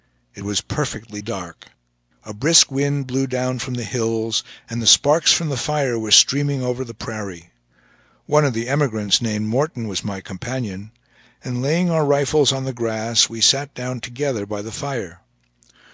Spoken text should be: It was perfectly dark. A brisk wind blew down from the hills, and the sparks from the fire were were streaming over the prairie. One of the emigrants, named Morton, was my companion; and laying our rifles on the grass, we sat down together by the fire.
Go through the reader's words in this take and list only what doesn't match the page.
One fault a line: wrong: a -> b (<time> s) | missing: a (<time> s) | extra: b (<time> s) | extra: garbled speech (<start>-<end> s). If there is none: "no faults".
missing: were (6.1 s)